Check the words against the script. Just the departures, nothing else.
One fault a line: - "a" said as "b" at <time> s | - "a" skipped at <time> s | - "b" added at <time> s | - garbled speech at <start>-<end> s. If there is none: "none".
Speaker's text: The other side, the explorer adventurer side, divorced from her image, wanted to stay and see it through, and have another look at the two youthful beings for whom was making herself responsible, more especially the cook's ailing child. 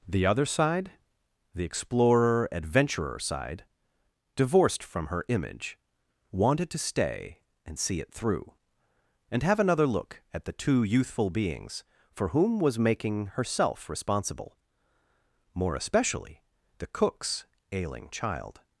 none